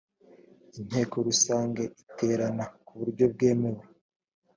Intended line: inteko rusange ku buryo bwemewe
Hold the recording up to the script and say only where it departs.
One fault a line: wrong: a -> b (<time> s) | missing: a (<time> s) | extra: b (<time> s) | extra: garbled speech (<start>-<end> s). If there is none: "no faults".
extra: iterana (2.0 s)